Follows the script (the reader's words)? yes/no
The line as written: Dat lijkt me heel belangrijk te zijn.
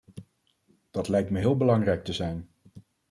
yes